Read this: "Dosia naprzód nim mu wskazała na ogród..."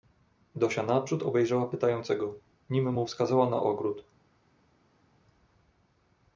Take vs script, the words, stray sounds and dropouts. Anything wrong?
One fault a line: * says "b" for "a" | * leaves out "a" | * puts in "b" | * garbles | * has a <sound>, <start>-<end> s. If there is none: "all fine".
* puts in "obejrzała pytającego"